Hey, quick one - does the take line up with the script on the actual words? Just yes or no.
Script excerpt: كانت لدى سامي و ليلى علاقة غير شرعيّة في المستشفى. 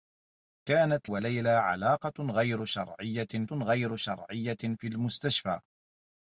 no